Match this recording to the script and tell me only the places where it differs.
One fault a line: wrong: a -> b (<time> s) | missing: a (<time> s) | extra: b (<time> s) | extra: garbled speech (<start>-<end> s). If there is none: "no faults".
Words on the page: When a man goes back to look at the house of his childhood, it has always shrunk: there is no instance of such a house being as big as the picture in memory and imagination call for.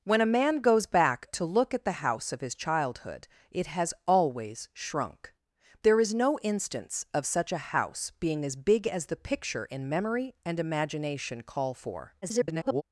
extra: garbled speech (12.2-12.8 s)